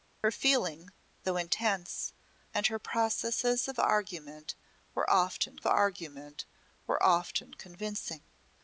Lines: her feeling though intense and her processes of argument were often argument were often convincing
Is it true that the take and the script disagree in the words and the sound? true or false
false